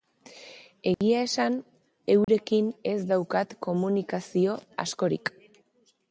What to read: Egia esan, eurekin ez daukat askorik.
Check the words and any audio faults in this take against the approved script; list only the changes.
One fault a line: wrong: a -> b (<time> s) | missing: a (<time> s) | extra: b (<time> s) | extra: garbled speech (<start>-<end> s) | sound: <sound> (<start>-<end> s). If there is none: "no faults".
sound: dropout (0.9-1.0 s)
sound: dropout (2.2-2.3 s)
extra: komunikazio (3.7 s)